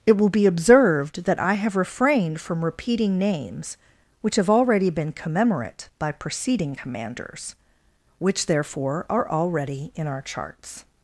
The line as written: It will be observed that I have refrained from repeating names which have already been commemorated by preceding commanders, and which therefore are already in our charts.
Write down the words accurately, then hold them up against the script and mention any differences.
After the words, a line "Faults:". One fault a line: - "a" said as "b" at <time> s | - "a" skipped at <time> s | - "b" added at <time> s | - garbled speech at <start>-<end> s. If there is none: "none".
It will be observed that I have refrained from repeating names which have already been commemorate by preceding commanders, which therefore are already in our charts.
Faults:
- "commemorated" said as "commemorate" at 5.1 s
- "and" skipped at 7.6 s